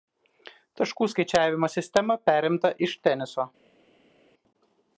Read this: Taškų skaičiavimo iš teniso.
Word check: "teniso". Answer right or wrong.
right